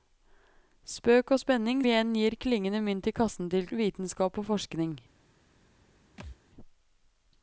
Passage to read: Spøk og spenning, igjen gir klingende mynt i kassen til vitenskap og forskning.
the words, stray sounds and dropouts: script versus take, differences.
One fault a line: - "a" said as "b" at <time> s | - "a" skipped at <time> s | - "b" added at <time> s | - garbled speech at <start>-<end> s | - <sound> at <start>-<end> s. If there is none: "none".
- thud at 6.2-6.4 s